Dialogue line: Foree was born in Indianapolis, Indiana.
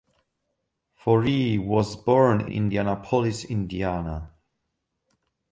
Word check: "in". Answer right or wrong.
wrong